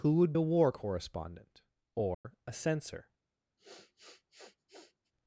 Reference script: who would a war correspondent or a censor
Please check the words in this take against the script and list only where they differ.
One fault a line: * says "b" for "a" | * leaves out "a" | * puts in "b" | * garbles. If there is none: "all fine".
all fine